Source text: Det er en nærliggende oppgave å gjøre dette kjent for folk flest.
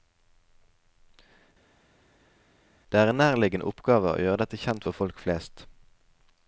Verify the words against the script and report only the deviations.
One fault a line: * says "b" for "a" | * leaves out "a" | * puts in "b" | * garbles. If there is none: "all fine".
all fine